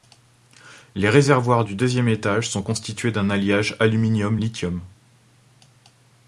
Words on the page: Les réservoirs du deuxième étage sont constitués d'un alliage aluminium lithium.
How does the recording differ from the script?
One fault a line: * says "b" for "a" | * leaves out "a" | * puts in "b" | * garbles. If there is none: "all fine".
all fine